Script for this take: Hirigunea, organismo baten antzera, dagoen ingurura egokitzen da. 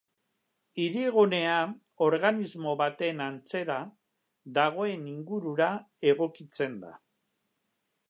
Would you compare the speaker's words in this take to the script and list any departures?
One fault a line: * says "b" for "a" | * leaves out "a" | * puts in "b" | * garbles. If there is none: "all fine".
all fine